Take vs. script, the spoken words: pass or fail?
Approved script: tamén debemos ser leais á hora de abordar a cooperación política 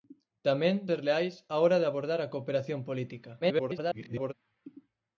fail